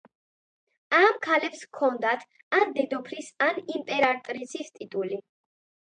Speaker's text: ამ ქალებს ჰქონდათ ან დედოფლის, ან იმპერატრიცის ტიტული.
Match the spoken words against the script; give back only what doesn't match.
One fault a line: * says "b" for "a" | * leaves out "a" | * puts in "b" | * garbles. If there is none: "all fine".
all fine